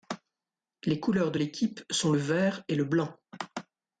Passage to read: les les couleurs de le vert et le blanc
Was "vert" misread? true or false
false